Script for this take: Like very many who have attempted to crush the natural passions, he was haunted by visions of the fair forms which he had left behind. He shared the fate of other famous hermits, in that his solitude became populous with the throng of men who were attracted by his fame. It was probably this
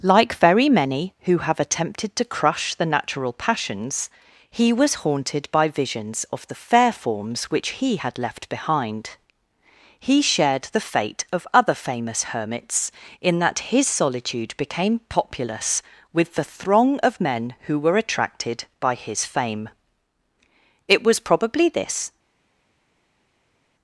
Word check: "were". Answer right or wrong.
right